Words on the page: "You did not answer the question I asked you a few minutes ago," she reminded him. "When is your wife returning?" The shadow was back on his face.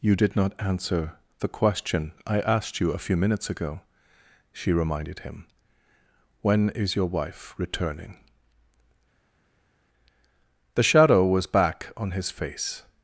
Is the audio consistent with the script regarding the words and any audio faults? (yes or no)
yes